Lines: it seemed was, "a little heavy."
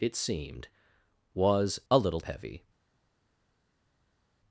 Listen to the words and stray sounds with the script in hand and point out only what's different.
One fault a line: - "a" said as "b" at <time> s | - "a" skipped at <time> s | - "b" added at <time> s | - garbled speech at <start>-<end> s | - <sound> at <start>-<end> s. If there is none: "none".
none